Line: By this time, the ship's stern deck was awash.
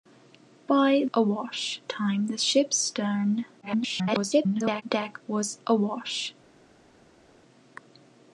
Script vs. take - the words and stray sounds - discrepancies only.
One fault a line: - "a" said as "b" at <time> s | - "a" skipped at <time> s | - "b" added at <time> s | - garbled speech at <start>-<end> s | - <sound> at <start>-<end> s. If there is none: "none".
- "this" said as "awash" at 1.1 s
- garbled speech at 3.6-4.8 s